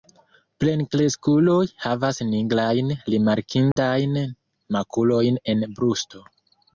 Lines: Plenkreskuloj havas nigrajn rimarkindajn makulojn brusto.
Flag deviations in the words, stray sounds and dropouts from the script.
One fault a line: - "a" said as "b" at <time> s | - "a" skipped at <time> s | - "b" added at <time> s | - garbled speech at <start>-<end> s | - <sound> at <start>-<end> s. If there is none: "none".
- dropout at 3.7-3.8 s
- "en" added at 5.6 s